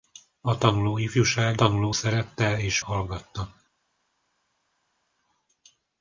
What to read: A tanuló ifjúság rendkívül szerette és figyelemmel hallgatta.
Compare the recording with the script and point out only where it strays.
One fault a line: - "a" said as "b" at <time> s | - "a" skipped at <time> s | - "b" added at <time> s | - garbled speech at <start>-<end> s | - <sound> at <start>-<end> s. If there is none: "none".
- "rendkívül" said as "tanuló" at 1.5 s
- "figyelemmel" skipped at 2.8 s